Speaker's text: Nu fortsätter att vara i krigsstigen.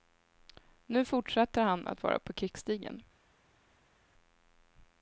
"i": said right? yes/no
no